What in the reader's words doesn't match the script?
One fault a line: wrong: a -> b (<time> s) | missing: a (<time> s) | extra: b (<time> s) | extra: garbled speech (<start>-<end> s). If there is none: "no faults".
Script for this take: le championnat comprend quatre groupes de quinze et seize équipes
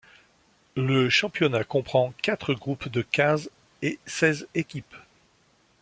no faults